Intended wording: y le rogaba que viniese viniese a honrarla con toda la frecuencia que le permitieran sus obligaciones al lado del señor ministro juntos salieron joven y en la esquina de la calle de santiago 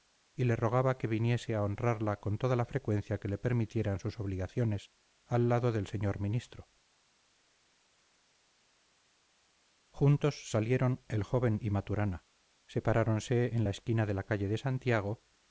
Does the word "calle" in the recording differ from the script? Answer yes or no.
no